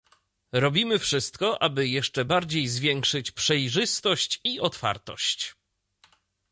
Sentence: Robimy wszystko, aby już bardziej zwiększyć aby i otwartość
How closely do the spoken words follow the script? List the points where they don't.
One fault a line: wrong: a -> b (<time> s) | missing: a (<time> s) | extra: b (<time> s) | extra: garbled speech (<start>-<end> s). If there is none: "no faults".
wrong: już -> jeszcze (1.9 s)
wrong: aby -> przejrzystość (3.3 s)